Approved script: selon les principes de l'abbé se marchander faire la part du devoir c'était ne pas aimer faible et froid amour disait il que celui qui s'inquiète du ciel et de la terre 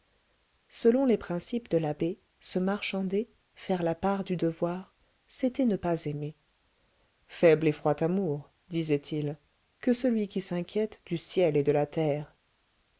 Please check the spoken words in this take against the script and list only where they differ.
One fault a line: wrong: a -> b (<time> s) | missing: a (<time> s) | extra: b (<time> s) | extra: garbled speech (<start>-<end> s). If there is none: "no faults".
no faults